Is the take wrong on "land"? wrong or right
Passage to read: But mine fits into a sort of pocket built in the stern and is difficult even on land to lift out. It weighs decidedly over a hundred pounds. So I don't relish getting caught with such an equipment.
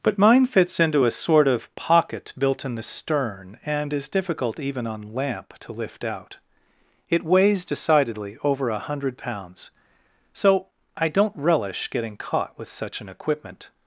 wrong